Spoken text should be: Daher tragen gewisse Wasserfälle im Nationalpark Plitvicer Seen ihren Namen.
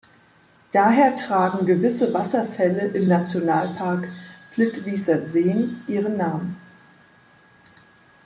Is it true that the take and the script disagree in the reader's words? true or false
false